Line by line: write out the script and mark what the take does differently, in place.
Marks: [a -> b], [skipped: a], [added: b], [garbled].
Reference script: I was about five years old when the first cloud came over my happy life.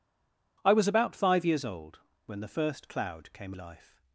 I was about five years old when the first cloud came [skipped: over my happy] life.